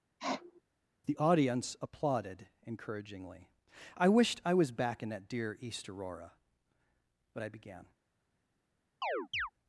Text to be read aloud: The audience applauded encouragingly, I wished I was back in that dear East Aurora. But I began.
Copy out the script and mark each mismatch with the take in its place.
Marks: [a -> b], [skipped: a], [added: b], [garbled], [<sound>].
[sniff] The audience applauded encouragingly, I wished I was back in that dear East Aurora. But I began. [chirp]